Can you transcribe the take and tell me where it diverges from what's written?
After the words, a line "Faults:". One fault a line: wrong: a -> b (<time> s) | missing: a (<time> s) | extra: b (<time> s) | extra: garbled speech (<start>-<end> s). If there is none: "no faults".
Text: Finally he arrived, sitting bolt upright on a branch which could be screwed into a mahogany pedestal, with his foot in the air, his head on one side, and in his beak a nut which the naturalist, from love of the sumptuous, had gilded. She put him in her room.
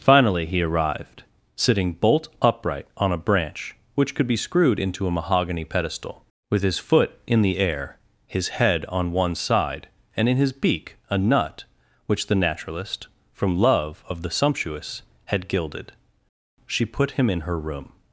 Finally he arrived, sitting bolt upright on a branch which could be screwed into a mahogany pedestal, with his foot in the air, his head on one side, and in his beak a nut which the naturalist, from love of the sumptuous, had gilded. She put him in her room.
Faults:
no faults